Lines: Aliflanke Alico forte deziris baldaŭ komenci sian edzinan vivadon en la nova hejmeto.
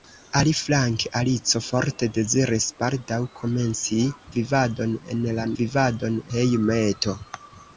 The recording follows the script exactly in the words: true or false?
false